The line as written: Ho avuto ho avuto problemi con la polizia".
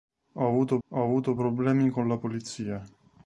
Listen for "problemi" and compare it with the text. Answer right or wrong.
right